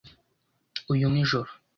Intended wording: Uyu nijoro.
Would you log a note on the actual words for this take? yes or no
no